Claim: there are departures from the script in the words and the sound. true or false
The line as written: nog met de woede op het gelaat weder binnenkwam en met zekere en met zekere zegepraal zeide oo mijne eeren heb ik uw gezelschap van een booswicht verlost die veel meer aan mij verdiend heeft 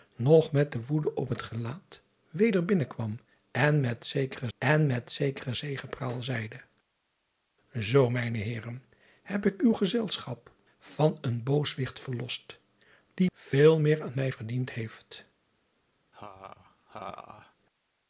true